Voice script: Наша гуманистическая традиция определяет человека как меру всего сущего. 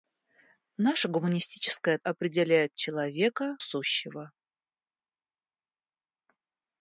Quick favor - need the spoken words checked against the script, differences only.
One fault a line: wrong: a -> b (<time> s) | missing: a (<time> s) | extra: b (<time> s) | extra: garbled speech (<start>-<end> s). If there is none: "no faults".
missing: традиция (2.0 s)
missing: как меру всего (3.6 s)